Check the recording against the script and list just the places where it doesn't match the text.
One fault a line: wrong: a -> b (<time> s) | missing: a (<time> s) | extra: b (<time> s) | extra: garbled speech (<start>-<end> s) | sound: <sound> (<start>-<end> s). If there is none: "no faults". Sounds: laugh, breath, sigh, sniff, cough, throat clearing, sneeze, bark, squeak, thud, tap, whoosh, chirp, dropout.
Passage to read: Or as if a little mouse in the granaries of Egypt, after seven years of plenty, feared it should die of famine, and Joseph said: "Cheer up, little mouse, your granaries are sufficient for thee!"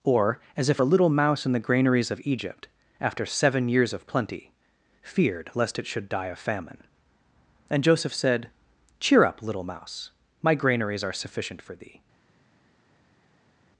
extra: lest (5.5 s)
wrong: your -> my (10.4 s)